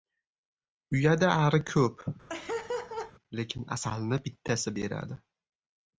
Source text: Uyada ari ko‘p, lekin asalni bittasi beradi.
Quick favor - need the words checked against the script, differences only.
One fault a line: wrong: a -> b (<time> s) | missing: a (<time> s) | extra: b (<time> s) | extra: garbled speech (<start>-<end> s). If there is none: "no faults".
no faults